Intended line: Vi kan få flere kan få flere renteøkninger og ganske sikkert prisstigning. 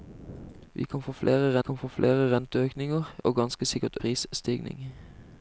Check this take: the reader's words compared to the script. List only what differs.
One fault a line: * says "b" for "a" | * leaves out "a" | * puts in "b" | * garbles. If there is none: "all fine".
all fine